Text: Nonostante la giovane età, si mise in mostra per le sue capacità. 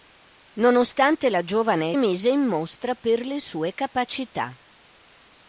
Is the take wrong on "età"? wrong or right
wrong